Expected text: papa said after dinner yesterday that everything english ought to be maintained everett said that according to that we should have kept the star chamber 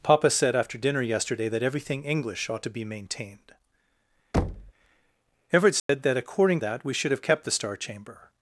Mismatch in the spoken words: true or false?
true